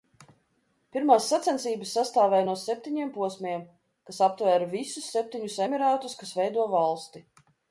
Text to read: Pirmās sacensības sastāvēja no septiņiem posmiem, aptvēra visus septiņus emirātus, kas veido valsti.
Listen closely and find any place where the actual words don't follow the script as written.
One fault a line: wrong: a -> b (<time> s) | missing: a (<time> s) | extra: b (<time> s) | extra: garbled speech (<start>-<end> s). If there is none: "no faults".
extra: kas (4.1 s)